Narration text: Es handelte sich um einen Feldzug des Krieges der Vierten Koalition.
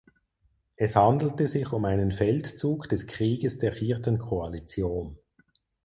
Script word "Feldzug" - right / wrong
right